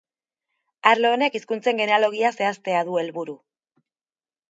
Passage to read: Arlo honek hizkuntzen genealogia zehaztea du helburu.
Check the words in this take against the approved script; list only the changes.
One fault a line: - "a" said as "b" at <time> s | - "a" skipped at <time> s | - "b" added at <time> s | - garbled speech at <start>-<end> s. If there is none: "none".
none